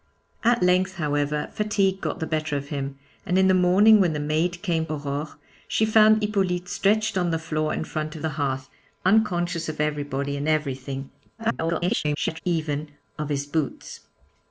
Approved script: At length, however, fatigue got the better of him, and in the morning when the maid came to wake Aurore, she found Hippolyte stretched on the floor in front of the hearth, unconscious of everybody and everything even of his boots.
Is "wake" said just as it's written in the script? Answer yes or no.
no